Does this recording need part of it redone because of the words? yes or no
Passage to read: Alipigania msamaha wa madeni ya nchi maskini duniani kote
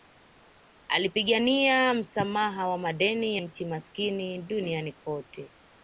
yes